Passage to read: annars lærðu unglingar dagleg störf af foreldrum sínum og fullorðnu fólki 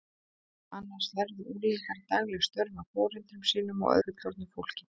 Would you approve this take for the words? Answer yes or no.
yes